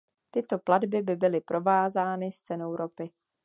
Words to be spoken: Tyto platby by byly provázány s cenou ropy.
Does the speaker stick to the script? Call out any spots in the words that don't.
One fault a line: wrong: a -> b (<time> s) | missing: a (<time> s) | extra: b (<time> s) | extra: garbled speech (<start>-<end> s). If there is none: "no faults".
no faults